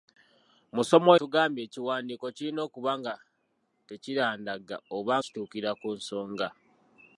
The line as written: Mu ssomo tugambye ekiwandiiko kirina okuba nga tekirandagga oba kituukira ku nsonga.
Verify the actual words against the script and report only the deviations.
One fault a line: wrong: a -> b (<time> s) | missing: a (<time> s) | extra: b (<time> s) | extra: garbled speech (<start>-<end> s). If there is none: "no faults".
no faults